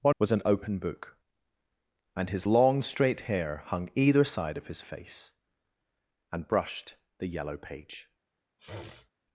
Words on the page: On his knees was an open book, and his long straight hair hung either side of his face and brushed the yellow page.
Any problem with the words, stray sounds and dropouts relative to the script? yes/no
yes